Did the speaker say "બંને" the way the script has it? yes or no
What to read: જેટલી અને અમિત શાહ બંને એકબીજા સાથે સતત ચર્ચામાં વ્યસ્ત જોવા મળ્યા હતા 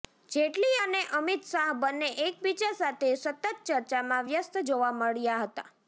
yes